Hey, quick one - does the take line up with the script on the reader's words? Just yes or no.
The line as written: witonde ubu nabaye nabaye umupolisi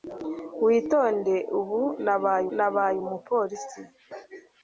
yes